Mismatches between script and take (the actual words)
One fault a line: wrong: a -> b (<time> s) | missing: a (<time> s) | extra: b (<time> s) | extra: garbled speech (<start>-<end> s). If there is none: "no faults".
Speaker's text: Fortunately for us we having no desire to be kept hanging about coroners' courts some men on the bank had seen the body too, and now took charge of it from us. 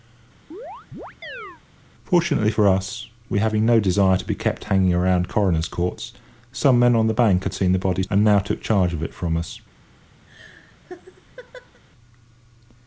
missing: too (8.0 s)